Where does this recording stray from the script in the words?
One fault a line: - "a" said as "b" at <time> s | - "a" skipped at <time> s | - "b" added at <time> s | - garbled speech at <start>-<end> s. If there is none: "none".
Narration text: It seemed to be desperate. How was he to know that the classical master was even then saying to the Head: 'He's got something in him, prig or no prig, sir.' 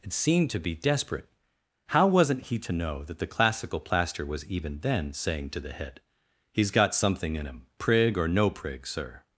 - "was" said as "wasn't" at 2.1 s
- "master" said as "plaster" at 3.8 s